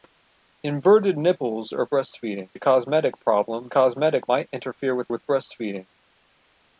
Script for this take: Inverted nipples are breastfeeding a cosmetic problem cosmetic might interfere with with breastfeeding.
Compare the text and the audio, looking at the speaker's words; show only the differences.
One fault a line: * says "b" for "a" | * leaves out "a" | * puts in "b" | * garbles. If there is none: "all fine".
all fine